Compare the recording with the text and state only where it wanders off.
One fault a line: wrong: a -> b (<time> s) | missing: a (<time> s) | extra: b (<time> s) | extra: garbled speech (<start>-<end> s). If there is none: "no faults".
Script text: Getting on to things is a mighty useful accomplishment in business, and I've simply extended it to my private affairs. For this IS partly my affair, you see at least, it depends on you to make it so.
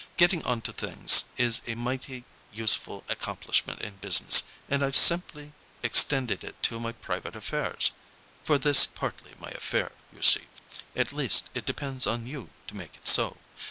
missing: IS (8.9 s)